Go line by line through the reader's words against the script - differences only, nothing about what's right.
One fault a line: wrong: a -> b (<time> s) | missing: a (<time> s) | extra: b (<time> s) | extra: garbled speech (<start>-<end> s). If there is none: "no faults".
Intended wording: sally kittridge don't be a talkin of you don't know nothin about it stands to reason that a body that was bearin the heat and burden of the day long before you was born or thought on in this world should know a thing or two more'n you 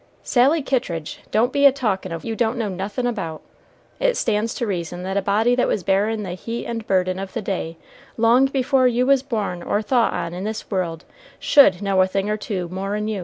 no faults